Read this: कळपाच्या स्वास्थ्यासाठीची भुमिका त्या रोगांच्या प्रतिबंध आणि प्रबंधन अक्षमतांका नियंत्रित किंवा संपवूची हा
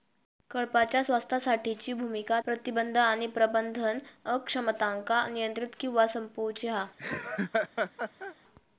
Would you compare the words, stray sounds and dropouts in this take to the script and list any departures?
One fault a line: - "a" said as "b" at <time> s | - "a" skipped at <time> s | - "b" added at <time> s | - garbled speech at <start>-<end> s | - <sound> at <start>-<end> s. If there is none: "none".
- "त्या रोगांच्या" skipped at 2.4 s
- laugh at 7.0-8.4 s